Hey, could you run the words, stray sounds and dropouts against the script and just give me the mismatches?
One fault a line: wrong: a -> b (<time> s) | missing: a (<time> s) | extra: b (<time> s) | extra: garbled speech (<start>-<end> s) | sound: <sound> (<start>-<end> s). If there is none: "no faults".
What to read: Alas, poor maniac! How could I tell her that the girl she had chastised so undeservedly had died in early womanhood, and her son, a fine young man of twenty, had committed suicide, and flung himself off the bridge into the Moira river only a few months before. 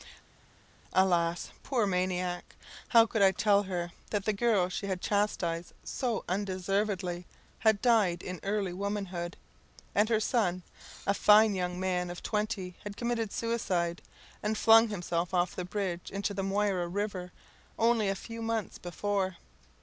no faults